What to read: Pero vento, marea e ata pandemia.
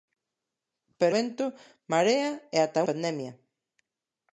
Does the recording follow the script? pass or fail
pass